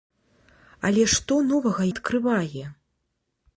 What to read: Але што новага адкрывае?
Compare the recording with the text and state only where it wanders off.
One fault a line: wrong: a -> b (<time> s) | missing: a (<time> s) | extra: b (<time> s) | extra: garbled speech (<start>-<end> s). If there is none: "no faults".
no faults